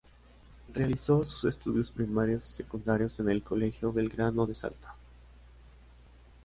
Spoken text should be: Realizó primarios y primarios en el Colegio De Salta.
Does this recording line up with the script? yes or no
no